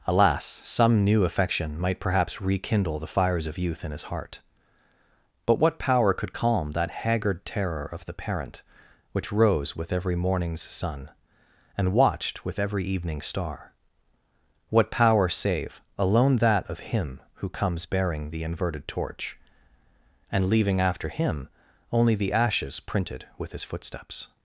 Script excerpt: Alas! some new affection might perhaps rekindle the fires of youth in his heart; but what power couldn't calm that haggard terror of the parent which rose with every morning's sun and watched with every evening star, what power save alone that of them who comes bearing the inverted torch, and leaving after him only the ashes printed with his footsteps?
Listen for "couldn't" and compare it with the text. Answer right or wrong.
wrong